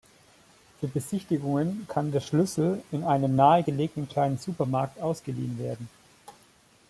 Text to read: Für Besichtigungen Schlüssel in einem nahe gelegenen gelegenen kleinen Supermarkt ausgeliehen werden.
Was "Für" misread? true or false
false